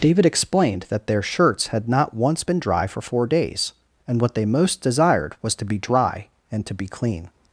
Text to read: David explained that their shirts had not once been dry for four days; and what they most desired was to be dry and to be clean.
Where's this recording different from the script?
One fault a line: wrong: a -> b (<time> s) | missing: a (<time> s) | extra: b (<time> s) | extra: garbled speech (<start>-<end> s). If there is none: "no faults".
no faults